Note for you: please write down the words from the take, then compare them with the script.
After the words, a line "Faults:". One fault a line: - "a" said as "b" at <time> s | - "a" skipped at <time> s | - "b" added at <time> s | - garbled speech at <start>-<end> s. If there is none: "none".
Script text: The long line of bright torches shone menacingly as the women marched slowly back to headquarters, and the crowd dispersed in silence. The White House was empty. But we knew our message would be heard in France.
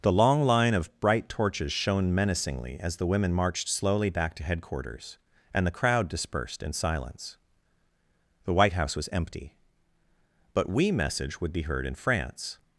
The long line of bright torches shone menacingly as the women marched slowly back to headquarters, and the crowd dispersed in silence. The White House was empty. But we message would be heard in France.
Faults:
- "knew our" skipped at 10.9 s